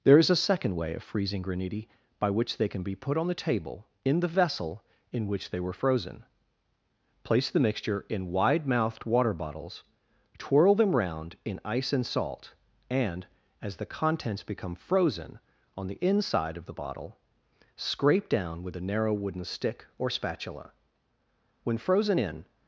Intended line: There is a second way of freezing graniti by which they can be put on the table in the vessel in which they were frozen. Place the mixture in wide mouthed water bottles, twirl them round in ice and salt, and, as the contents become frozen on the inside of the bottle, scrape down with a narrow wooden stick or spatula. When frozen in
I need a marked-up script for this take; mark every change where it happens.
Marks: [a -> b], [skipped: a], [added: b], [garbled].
There is a second way of freezing graniti by which they can be put on the table in the vessel in which they were frozen. Place the mixture in wide mouthed water bottles, twirl them round in ice and salt, and, as the contents become frozen on the inside of the bottle, scrape down with a narrow wooden stick or spatula. When frozen in